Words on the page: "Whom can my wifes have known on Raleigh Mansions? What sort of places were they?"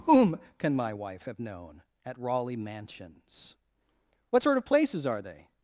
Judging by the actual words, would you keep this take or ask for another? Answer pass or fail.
fail